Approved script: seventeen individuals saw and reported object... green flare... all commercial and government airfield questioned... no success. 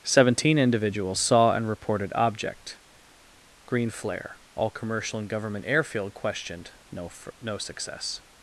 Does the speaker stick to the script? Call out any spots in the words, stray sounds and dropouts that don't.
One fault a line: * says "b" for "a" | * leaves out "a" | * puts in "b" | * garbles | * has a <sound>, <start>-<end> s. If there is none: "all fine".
* puts in "no"